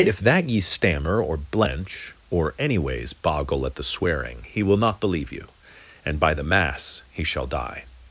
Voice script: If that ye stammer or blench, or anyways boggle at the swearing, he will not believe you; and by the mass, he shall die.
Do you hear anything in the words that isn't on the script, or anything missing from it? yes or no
no